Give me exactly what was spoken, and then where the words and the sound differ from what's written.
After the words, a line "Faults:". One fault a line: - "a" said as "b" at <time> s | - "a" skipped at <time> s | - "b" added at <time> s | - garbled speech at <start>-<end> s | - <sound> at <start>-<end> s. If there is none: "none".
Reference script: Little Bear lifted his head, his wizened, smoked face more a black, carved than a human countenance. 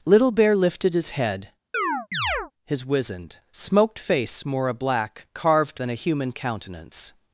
Little Bear lifted his head, his wizened, smoked face more a black, carved than a human countenance.
Faults:
- chirp at 1.7-2.5 s